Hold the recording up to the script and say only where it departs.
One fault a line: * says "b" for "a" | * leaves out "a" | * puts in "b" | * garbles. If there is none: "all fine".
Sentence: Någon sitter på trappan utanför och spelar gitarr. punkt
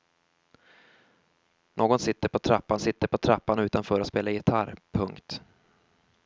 * puts in "sitter på trappan"